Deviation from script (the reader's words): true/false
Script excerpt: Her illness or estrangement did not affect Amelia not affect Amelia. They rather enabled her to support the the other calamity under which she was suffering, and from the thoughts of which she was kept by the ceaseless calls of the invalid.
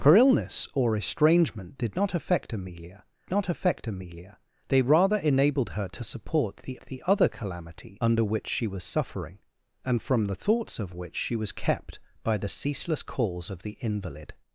false